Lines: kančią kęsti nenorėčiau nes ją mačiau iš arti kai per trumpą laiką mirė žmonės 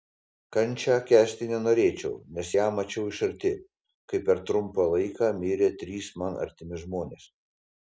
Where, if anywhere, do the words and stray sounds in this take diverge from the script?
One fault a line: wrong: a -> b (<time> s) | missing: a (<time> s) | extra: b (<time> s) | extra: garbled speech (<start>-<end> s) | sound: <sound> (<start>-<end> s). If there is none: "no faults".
extra: trys man artimi (5.9 s)